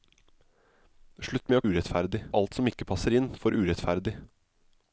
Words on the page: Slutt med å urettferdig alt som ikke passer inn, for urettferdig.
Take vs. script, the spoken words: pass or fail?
pass